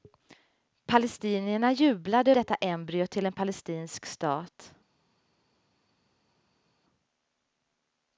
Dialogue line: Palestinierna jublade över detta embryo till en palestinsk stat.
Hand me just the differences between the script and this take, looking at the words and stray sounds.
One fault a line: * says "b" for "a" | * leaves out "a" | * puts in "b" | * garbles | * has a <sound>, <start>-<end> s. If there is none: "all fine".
* leaves out "över"